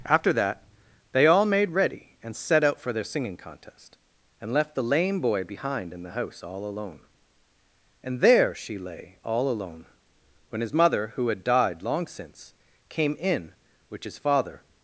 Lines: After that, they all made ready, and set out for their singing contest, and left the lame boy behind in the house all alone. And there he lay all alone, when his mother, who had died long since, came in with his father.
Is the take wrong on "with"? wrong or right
wrong